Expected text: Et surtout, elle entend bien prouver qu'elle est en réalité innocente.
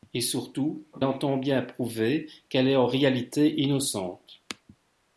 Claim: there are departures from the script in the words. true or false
true